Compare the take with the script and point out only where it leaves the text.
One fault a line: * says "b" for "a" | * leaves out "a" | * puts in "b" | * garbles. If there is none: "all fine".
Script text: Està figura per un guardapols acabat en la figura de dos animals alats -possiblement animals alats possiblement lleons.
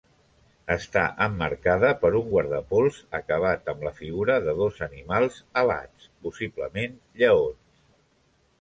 * says "emmarcada" for "figura"
* says "amb" for "en"
* leaves out "animals alats possiblement"